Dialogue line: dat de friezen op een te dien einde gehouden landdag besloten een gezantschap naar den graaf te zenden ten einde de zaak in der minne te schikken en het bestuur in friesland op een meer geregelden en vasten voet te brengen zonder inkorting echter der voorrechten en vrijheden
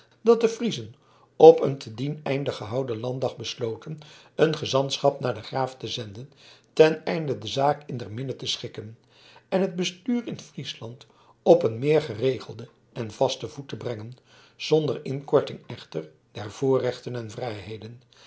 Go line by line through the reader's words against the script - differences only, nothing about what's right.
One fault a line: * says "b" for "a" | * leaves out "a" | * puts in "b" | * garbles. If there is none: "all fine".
all fine